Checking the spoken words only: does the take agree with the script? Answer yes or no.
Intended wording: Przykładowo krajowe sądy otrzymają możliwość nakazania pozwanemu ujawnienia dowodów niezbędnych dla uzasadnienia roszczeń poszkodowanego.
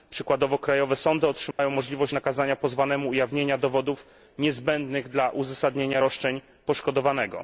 yes